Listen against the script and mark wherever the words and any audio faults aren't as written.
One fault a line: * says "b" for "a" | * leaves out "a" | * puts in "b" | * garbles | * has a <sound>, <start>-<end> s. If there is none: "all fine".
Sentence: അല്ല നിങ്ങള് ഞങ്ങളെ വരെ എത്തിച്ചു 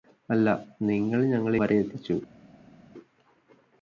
all fine